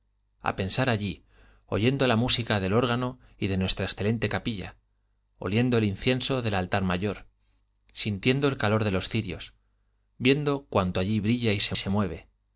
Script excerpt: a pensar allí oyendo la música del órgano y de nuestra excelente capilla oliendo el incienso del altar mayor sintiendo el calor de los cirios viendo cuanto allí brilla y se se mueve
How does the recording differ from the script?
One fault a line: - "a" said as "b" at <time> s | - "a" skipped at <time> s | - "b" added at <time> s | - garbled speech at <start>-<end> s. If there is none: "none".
none